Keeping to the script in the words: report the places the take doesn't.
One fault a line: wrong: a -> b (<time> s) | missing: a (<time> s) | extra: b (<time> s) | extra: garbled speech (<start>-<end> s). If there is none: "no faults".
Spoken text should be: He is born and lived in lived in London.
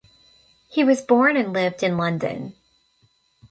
wrong: is -> was (0.8 s)
missing: lived in (2.0 s)